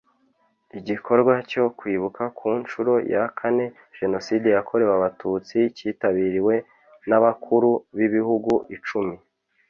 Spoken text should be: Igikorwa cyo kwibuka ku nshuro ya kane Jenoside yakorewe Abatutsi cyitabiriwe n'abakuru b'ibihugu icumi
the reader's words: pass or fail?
pass